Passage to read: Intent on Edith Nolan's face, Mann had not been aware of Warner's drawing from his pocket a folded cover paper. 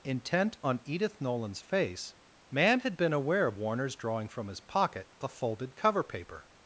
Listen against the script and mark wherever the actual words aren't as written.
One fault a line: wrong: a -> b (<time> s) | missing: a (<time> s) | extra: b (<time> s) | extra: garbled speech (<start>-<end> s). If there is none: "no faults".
missing: not (3.0 s)